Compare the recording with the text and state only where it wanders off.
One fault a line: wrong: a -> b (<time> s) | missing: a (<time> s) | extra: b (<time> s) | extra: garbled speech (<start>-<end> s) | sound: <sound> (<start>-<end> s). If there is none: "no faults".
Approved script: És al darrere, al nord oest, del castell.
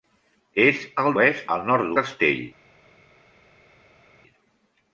wrong: darrere -> oest (1.2 s)
missing: oest del (2.0 s)